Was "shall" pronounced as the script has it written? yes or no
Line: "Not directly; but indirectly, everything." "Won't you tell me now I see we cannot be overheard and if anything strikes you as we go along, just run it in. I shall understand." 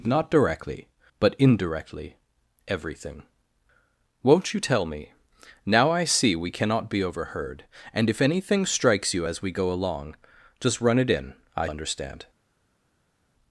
no